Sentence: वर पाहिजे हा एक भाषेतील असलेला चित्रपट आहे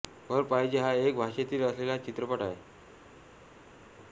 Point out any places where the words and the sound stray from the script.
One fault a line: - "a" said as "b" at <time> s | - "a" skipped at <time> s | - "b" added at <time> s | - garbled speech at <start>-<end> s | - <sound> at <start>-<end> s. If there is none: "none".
none